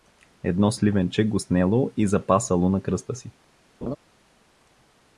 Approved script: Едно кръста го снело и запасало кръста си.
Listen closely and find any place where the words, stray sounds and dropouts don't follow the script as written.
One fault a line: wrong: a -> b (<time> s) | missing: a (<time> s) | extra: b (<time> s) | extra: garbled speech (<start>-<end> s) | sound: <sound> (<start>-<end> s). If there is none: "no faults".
wrong: кръста -> сливенче (0.7 s)
extra: на (2.7 s)
sound: laugh (3.8-4.0 s)